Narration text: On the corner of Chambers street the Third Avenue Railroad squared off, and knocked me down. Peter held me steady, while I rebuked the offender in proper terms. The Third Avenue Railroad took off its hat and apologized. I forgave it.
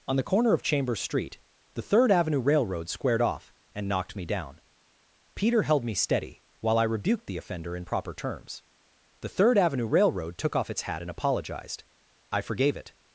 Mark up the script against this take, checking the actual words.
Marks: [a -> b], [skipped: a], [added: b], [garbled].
On the corner of Chambers street the Third Avenue Railroad squared off, and knocked me down. Peter held me steady, while I rebuked the offender in proper terms. The Third Avenue Railroad took off its hat and apologized. I forgave it.